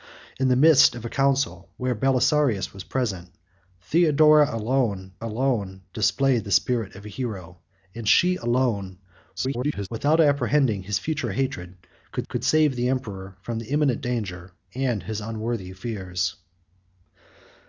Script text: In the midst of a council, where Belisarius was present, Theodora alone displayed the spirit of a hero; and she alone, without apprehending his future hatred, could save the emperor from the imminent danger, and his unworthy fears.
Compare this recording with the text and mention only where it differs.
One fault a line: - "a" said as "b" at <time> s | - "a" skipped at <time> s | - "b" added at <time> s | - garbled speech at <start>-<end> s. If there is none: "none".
- "alone" added at 5.2 s
- garbled speech at 9.4-9.9 s
- "could" added at 12.3 s